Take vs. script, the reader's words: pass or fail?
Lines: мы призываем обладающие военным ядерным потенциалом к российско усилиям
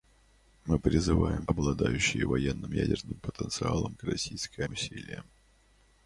pass